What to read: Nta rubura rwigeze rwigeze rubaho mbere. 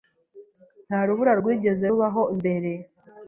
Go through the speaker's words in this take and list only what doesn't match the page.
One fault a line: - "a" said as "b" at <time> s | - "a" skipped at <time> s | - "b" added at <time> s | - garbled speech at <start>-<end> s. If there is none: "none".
- "rwigeze" skipped at 1.9 s